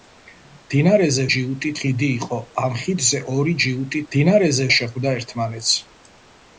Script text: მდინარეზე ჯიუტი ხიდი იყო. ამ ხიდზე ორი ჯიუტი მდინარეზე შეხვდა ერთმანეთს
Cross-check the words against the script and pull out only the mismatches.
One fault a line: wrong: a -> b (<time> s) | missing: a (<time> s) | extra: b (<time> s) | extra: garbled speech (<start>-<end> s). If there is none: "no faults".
no faults